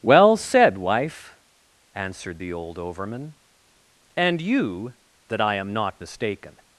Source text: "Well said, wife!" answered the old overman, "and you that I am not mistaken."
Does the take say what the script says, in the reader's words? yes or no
yes